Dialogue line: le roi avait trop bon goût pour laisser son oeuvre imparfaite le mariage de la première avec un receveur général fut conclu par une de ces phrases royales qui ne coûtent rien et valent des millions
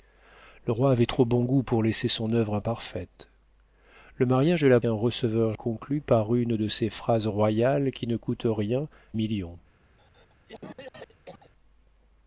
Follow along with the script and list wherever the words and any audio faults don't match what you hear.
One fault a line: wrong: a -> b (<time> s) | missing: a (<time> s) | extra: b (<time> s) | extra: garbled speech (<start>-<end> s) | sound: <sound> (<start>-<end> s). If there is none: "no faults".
missing: première avec (4.8 s)
missing: général fut (5.5 s)
missing: et valent des (8.9 s)
sound: cough (10.0-11.5 s)